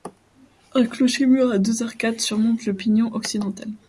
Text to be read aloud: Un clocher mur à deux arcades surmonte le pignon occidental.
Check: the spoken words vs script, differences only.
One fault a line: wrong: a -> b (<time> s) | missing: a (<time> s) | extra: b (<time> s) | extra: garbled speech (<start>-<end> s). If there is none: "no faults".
no faults